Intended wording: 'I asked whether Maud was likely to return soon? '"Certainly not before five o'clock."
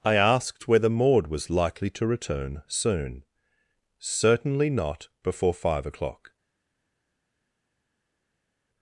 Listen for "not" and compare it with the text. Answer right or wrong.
right